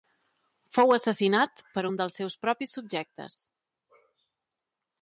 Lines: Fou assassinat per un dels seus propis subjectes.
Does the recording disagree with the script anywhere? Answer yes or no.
no